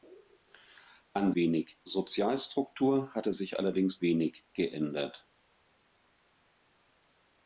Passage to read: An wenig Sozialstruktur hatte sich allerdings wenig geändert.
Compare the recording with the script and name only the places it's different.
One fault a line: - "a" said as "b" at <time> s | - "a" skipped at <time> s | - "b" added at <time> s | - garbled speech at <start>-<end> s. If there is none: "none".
none